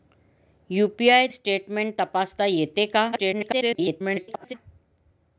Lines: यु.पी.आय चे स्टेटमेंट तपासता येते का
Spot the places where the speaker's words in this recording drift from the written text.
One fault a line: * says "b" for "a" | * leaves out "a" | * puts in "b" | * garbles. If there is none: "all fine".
* leaves out "चे"
* garbles